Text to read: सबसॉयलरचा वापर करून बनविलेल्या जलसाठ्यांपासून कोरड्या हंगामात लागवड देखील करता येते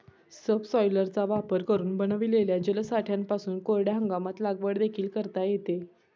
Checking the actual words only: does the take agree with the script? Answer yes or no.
yes